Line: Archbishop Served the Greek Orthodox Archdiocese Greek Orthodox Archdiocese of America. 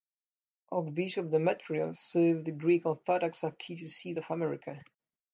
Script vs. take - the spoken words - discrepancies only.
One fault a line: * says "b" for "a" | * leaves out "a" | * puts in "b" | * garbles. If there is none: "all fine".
* puts in "Demetrios"
* leaves out "Greek Orthodox Archdiocese"